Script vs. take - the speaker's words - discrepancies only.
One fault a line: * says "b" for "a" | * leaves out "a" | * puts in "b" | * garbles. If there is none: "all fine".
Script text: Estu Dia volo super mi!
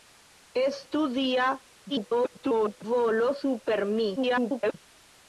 * garbles
* garbles